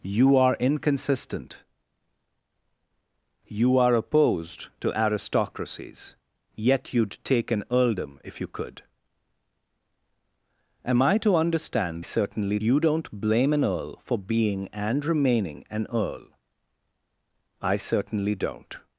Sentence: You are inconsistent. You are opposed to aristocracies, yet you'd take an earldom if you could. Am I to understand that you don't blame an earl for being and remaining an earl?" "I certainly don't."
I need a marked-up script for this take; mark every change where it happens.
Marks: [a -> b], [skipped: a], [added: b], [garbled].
You are inconsistent. You are opposed to aristocracies, yet you'd take an earldom if you could. Am I to understand [that -> certainly] you don't blame an earl for being and remaining an earl?" "I certainly don't."